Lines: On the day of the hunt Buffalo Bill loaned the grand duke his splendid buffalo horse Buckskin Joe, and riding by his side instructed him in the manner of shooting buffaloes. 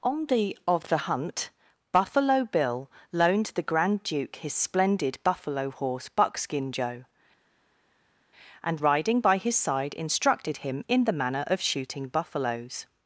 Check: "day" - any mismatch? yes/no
yes